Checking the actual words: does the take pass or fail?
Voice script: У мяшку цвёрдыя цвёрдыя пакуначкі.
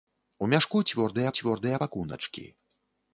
pass